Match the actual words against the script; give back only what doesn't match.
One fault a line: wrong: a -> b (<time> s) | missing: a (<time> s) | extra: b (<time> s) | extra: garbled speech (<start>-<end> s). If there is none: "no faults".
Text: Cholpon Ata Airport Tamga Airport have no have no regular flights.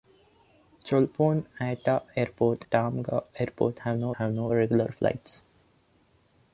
no faults